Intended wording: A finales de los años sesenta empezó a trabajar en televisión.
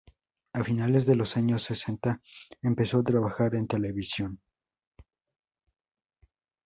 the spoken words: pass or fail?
pass